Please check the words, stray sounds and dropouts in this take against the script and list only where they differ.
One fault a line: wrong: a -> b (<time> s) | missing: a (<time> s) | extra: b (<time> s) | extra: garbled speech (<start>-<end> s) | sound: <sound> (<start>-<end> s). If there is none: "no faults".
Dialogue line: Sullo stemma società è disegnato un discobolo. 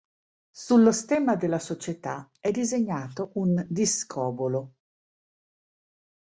extra: della (1.4 s)